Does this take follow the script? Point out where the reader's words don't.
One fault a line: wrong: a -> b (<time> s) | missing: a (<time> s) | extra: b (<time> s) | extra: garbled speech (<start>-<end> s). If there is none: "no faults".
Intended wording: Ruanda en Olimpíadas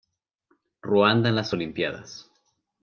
extra: las (1.4 s)